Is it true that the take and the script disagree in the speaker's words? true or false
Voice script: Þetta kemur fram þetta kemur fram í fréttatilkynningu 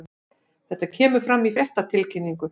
true